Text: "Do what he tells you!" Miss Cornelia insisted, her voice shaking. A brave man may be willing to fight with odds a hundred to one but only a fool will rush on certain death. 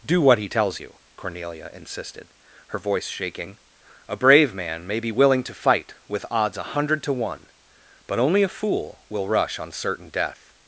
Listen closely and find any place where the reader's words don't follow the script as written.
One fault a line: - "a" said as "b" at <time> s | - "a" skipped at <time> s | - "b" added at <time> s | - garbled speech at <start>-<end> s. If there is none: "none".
- "Miss" skipped at 1.0 s